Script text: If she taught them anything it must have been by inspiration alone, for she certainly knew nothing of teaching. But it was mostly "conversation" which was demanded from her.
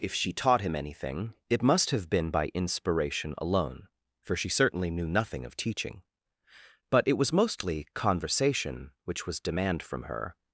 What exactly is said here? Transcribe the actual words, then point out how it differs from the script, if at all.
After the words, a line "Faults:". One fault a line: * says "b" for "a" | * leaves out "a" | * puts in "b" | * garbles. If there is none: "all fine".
If she taught him anything it must have been by inspiration alone, for she certainly knew nothing of teaching. But it was mostly "conversation" which was demand from her.
Faults:
* says "him" for "them"
* says "demand" for "demanded"